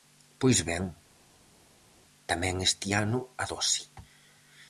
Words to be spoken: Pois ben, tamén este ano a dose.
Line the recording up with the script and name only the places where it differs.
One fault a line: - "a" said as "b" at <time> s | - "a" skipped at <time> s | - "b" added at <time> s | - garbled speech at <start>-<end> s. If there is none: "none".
none